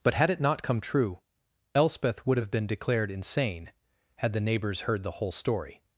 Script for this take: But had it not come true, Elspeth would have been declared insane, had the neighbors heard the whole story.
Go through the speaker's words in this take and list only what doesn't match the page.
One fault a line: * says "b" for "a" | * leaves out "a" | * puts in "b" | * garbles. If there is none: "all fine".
all fine